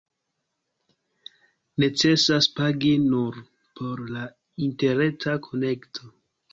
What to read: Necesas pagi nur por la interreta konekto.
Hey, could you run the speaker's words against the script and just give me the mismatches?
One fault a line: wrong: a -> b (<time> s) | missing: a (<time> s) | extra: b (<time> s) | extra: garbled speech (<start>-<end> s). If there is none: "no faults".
no faults